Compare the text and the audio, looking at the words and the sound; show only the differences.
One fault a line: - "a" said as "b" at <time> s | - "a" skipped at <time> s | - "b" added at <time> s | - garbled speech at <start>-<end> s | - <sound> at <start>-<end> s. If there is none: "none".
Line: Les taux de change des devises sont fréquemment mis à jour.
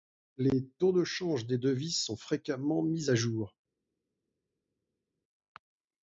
none